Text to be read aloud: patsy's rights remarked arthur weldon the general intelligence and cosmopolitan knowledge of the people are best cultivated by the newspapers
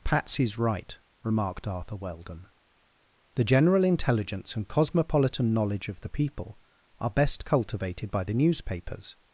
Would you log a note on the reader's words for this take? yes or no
yes